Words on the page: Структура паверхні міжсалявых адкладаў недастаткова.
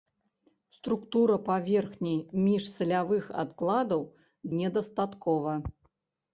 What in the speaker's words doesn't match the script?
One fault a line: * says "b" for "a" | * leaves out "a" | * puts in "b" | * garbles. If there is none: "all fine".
all fine